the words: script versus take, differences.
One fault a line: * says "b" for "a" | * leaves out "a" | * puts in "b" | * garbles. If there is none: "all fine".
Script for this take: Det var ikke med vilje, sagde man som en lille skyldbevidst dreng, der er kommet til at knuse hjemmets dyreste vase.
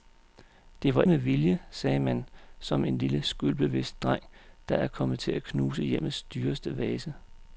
* leaves out "ikke"